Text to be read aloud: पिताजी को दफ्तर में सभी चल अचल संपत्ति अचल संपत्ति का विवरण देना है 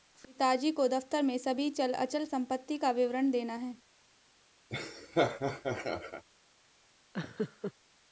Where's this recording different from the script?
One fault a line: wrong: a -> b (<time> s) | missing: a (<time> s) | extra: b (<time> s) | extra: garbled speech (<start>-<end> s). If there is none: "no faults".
missing: अचल संपत्ति (2.8 s)